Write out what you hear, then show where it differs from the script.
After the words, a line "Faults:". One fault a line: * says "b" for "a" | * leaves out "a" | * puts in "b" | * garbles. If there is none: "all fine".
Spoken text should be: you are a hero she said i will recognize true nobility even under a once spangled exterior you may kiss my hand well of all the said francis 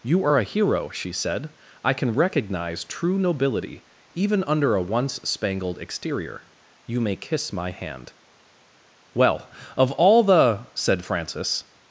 you are a hero she said i can recognize true nobility even under a once spangled exterior you may kiss my hand well of all the said francis
Faults:
* says "can" for "will"